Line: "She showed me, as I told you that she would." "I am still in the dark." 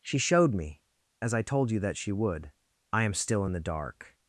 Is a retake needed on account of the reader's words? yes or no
no